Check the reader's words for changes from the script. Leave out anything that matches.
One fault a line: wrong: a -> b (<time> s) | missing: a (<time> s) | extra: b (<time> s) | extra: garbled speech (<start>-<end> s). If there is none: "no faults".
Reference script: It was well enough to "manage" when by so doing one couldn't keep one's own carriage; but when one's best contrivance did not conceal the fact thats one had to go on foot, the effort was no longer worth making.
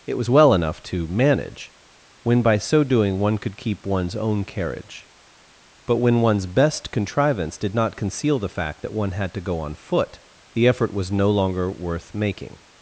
wrong: couldn't -> could (3.4 s)
wrong: thats -> that (8.8 s)